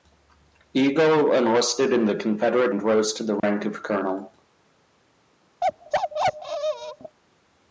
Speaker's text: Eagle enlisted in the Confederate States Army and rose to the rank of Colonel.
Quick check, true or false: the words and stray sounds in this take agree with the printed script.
false